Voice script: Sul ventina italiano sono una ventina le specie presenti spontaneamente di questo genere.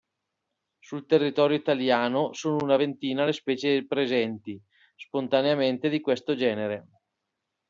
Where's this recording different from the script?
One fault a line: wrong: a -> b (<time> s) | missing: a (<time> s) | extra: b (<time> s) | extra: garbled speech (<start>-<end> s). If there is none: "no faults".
wrong: ventina -> territorio (1.1 s)